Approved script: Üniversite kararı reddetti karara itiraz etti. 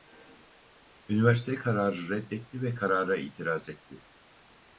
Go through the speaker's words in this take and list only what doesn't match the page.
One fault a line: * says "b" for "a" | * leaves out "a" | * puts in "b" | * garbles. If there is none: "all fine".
* puts in "ve"